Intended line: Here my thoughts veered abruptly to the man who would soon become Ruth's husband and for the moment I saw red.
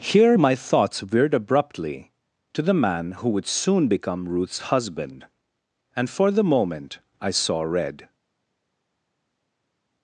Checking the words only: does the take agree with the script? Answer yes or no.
yes